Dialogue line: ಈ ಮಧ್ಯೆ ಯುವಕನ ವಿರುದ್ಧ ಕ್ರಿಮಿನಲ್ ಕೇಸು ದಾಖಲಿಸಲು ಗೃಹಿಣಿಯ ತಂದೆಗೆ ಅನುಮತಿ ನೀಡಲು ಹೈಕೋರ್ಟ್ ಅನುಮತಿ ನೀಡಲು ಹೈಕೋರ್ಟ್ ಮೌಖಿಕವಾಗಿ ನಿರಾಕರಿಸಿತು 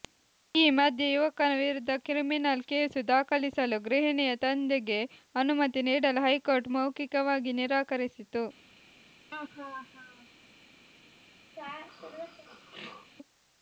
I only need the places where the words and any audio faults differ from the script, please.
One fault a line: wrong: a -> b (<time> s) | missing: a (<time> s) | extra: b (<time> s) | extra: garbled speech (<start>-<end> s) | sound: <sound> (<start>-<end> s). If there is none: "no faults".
missing: ಅನುಮತಿ ನೀಡಲು ಹೈಕೋರ್ಟ್ (6.7 s)
sound: laugh (9.3-10.3 s)
sound: throat clearing (11.6-13.1 s)